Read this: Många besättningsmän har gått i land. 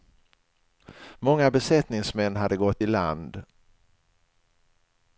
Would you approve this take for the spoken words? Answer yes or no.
no